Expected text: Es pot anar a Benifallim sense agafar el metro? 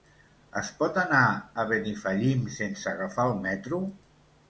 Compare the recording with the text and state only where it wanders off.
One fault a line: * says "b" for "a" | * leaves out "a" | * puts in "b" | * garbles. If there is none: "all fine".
all fine